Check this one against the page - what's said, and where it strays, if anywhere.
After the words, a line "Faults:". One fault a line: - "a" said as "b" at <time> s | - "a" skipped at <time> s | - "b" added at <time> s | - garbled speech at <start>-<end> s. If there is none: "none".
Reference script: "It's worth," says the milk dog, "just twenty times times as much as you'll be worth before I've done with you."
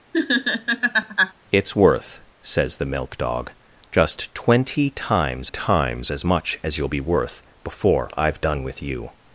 "It's worth," says the milk dog, "just twenty times times as much as you'll be worth before I've done with you."
Faults:
none